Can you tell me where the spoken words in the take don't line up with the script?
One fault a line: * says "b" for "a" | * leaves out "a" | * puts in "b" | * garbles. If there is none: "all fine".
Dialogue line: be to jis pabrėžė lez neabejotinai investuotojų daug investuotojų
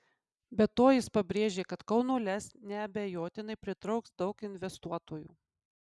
* puts in "kad kauno"
* says "pritrauks" for "investuotojų"